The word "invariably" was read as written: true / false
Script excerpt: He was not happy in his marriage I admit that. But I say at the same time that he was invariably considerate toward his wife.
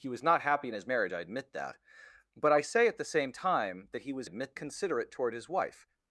false